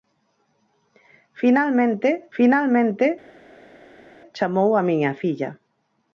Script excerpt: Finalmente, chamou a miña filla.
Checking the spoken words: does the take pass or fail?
fail